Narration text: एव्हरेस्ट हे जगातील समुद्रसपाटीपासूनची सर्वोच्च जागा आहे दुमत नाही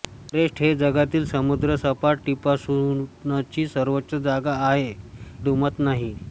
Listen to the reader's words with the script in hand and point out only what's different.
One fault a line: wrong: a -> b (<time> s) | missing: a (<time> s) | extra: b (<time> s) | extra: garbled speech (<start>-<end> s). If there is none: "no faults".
no faults